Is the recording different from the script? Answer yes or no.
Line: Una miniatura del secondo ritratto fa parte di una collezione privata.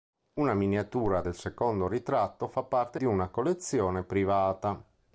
no